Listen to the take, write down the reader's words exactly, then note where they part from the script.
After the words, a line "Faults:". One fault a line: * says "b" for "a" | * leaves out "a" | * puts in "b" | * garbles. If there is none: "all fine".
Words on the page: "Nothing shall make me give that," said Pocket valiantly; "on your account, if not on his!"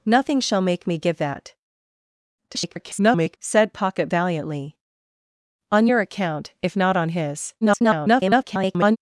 "Nothing shall make me give that," [garbled] said Pocket valiantly; "on your account, if not on his!" [garbled]
Faults:
* garbles
* garbles